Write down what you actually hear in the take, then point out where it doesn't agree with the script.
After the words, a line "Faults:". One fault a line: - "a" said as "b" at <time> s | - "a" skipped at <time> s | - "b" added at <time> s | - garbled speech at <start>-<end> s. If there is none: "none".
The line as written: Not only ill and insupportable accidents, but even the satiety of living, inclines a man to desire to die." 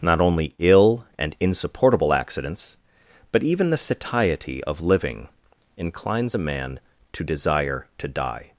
Not only ill and insupportable accidents, but even the satiety of living, inclines a man to desire to die."
Faults:
none